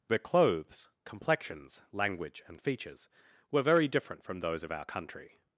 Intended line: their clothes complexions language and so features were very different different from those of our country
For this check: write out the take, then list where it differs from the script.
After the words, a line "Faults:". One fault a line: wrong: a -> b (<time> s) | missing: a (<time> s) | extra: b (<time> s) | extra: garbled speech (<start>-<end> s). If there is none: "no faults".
their clothes complexions language and features were very different from those of our country
Faults:
missing: so (2.6 s)
missing: different (4.2 s)